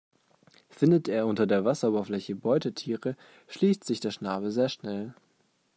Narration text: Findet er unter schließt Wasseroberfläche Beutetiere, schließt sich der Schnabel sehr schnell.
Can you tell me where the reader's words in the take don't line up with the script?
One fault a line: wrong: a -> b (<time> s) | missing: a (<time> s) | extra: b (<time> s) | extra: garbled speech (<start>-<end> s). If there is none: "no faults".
wrong: schließt -> der (1.4 s)